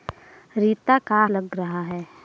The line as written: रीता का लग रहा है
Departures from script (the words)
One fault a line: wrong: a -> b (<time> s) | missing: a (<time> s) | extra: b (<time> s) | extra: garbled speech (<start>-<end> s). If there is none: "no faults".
no faults